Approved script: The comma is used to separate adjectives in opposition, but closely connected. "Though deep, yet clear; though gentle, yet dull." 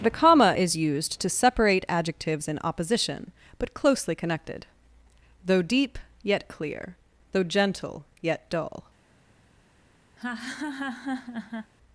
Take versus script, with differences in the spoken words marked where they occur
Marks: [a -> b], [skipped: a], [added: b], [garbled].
The comma is used to separate adjectives in opposition, but closely connected. "Though deep, yet clear; though gentle, yet dull."